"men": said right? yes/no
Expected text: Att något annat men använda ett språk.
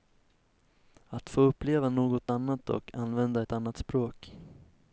no